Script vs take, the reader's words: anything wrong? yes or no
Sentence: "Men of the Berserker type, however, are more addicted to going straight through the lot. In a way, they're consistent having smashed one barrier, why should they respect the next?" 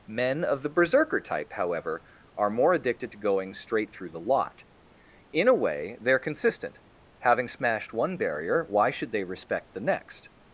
no